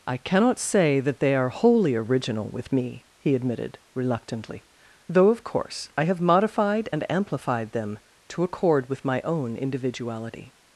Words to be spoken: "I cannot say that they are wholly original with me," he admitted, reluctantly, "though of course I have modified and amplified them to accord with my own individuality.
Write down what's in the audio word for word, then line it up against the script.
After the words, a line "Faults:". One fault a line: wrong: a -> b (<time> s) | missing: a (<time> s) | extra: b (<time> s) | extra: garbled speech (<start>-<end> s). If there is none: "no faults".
"I cannot say that they are wholly original with me," he admitted, reluctantly, "though of course I have modified and amplified them to accord with my own individuality.
Faults:
no faults